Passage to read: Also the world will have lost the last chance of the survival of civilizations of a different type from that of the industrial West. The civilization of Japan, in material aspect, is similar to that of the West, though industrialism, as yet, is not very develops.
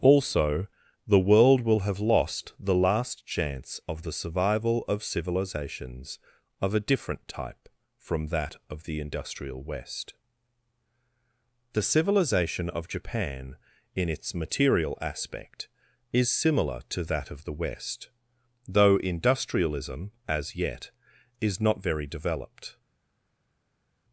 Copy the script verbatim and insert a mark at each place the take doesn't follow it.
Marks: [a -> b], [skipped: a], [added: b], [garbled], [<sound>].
Also the world will have lost the last chance of the survival of civilizations of a different type from that of the industrial West. The civilization of Japan, in [added: its] material aspect, is similar to that of the West, though industrialism, as yet, is not very [develops. -> developed]